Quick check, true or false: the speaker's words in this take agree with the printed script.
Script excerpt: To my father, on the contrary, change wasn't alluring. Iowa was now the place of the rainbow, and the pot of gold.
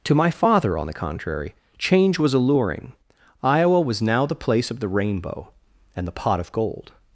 false